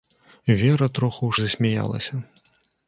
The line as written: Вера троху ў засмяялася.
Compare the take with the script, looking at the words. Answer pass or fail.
pass